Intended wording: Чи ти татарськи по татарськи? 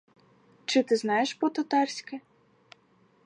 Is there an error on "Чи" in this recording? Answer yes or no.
no